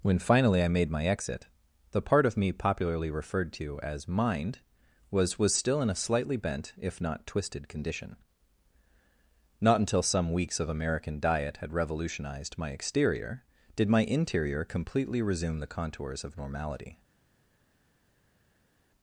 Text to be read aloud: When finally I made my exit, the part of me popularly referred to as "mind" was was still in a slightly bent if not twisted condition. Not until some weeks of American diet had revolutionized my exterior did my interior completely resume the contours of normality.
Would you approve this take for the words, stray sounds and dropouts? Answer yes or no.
yes